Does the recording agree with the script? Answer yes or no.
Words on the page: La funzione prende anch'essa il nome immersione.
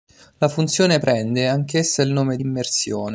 yes